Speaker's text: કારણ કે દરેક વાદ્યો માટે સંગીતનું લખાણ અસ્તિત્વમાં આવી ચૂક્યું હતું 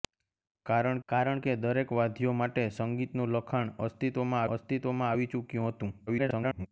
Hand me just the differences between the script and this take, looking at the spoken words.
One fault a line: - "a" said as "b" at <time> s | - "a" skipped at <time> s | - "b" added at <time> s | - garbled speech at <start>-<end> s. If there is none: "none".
- "કારણ" added at 1.1 s
- "અસ્તિત્વમાં" added at 4.5 s
- garbled speech at 6.1-6.7 s